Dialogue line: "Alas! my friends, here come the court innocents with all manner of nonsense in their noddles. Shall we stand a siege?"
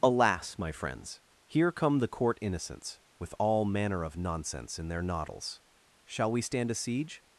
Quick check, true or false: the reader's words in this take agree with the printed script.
true